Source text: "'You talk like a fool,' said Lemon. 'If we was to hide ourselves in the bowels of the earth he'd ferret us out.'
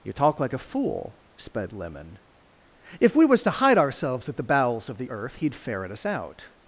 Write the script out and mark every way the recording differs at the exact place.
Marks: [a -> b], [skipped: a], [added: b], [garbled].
"'You talk like a fool,' [said -> sped] Lemon. 'If we was to hide ourselves [in -> at] the bowels of the earth he'd ferret us out.'